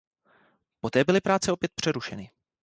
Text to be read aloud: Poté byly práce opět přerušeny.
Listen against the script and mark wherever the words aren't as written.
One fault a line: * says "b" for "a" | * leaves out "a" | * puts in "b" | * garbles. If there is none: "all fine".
all fine